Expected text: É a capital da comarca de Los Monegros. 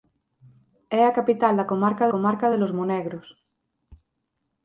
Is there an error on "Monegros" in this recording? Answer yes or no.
no